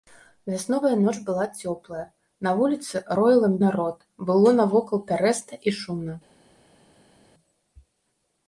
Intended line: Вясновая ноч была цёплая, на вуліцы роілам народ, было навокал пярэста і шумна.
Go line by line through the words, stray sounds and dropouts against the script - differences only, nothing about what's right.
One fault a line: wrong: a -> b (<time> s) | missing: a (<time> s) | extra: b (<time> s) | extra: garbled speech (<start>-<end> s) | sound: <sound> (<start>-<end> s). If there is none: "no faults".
no faults